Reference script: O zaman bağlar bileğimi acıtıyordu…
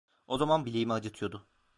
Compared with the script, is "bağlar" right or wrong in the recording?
wrong